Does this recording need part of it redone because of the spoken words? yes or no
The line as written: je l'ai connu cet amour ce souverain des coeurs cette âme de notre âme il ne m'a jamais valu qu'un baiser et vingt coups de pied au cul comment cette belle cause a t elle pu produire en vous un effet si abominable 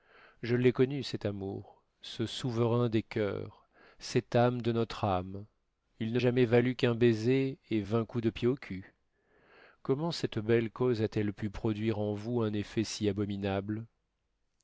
yes